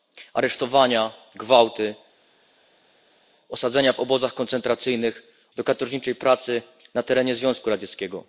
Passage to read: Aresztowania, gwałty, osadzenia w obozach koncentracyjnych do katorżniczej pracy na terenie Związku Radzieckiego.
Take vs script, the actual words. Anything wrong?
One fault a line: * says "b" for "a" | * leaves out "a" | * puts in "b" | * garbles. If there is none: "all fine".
all fine